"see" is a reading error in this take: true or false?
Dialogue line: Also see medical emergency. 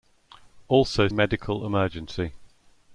true